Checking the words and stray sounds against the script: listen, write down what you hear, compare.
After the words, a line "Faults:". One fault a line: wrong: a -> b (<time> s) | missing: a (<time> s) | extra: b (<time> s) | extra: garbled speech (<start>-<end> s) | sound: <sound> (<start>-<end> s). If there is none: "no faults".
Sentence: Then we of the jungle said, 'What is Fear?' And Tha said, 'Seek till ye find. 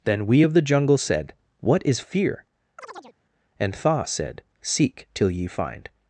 Then we of the jungle said, 'What is Fear?' And Tha said, 'Seek till ye find.
Faults:
sound: chirp (2.8-3.2 s)